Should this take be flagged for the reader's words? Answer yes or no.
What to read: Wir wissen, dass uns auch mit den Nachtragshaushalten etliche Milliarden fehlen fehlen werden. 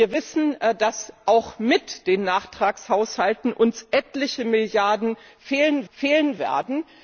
no